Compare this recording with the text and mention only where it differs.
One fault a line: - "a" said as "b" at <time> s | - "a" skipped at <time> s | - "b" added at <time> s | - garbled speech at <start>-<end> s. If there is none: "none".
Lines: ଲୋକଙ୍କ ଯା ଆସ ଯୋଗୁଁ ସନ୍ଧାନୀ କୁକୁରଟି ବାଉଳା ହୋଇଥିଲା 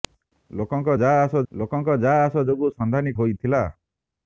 - "ଲୋକଙ୍କ ଯା ଆସ" added at 1.5 s
- "କୁକୁରଟି ବାଉଳା" skipped at 3.1 s